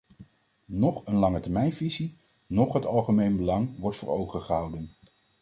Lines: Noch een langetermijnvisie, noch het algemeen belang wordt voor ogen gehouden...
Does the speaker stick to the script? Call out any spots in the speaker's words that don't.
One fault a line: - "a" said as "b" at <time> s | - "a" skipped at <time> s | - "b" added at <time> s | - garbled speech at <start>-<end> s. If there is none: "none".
none